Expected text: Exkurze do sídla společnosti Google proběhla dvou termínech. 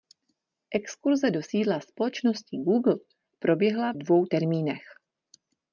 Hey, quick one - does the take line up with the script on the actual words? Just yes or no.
yes